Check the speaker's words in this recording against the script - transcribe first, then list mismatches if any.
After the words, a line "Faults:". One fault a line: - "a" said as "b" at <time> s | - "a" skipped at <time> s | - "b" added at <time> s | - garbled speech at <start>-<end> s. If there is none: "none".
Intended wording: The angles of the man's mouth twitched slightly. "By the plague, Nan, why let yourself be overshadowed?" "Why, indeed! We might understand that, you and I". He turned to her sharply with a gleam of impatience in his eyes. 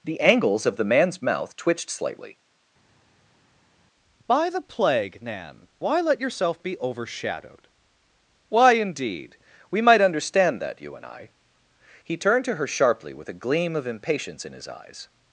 The angles of the man's mouth twitched slightly. "By the plague, Nan, why let yourself be overshadowed?" "Why, indeed! We might understand that, you and I". He turned to her sharply with a gleam of impatience in his eyes.
Faults:
none